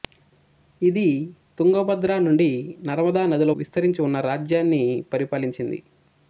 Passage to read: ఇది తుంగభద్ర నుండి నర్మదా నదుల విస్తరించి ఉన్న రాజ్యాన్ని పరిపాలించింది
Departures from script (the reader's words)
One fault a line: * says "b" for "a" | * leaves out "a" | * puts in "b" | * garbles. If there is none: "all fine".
all fine